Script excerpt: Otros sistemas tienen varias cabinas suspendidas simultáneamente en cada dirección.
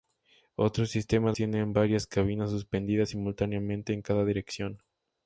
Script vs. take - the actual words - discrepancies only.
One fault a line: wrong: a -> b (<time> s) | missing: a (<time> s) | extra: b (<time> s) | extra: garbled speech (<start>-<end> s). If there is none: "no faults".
no faults